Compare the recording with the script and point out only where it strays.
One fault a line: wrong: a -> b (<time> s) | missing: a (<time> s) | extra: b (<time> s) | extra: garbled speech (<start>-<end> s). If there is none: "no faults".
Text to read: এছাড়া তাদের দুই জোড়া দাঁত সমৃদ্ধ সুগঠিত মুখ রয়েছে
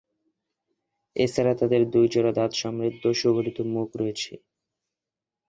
no faults